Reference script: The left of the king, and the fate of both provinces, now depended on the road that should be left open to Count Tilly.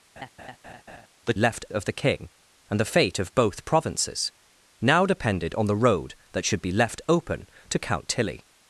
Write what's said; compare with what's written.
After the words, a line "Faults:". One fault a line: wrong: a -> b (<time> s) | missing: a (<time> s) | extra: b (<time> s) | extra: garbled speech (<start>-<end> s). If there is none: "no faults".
The left of the king, and the fate of both provinces, now depended on the road that should be left open to Count Tilly.
Faults:
no faults